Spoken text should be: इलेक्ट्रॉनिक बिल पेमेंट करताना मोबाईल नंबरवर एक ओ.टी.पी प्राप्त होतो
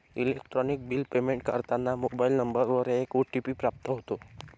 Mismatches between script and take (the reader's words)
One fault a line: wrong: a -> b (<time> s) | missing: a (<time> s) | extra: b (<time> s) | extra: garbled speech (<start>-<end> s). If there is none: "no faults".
no faults